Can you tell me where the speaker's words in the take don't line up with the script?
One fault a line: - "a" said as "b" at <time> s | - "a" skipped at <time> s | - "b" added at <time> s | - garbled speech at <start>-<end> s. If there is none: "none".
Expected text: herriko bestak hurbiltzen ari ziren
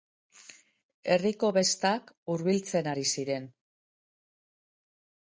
none